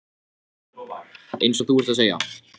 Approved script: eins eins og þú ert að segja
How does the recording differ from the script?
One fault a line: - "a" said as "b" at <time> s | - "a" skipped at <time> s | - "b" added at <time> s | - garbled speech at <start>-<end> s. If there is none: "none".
- "eins" skipped at 1.6 s